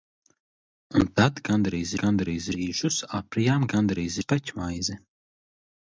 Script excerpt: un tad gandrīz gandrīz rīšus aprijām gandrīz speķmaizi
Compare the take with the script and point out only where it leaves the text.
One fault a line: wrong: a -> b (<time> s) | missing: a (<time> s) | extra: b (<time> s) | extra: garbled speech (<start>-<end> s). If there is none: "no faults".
no faults